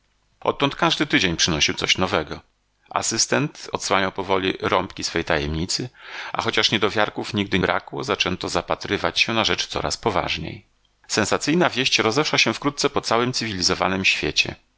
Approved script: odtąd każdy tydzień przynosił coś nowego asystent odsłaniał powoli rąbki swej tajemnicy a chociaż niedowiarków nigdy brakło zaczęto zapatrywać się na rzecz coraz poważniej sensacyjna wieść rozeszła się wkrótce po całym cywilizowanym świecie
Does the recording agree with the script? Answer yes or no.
yes